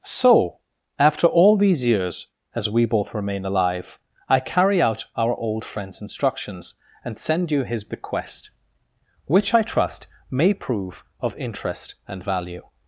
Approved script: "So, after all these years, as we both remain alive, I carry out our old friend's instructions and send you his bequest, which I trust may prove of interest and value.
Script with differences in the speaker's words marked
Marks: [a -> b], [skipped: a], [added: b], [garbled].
"So, after all these years, as we both remain alive, I carry out our old friend's instructions and send you his bequest, which I trust may prove of interest and value.